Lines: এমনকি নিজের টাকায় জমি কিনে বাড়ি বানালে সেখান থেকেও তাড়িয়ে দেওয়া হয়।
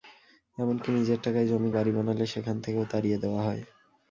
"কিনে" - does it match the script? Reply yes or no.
no